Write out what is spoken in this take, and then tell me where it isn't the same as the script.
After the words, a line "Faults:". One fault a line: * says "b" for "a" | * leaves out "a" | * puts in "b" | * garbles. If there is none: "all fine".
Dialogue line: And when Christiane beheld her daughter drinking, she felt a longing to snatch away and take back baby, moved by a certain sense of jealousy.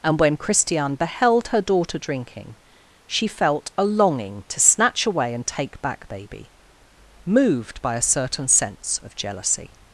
And when Christiane beheld her daughter drinking, she felt a longing to snatch away and take back baby, moved by a certain sense of jealousy.
Faults:
all fine